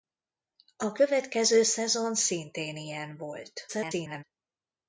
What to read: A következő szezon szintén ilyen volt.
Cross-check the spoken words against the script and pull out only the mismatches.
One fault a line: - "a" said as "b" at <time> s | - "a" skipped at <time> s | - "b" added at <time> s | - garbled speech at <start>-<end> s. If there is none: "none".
- garbled speech at 3.7-4.2 s